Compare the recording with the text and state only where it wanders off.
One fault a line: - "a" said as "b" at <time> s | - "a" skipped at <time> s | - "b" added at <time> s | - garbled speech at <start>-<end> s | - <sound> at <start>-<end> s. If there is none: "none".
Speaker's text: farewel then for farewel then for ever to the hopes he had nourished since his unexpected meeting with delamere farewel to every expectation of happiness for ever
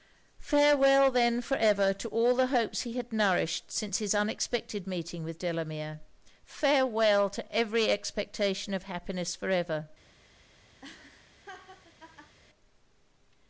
- "farewel then for" skipped at 1.6 s
- "all" added at 2.1 s
- laugh at 10.8-12.4 s